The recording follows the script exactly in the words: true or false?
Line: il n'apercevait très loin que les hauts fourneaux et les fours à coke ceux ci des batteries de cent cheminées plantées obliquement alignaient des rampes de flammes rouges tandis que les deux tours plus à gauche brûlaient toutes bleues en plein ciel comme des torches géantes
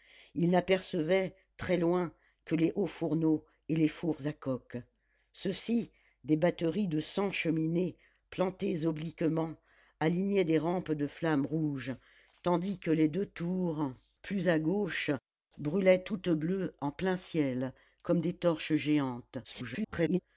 false